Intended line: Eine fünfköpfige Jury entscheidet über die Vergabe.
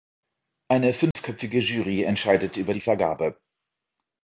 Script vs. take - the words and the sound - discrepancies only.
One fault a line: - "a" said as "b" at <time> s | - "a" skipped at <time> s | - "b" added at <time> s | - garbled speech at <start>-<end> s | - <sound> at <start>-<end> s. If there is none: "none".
- dropout at 1.1-1.2 s